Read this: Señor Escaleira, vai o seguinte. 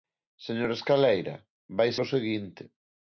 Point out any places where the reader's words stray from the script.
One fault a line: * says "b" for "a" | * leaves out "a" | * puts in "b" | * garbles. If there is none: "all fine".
all fine